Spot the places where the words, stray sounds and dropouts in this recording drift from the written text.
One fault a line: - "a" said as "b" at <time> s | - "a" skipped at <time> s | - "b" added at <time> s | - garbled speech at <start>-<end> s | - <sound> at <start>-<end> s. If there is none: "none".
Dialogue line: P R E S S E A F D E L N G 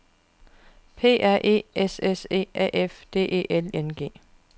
none